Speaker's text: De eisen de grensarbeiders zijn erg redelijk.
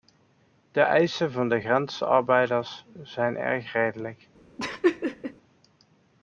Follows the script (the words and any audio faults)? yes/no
no